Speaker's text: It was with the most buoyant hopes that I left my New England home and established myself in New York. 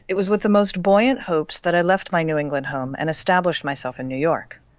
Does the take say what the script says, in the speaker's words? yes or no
yes